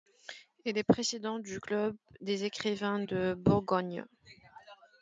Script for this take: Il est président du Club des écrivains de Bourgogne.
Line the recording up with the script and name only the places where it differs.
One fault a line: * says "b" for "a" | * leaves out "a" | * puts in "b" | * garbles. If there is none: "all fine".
all fine